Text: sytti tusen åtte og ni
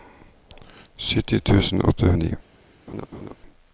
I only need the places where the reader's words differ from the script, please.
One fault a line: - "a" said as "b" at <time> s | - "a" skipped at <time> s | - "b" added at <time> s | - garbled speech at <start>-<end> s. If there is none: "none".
none